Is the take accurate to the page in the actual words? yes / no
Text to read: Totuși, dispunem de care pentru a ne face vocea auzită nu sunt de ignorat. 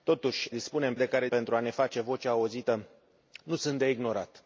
yes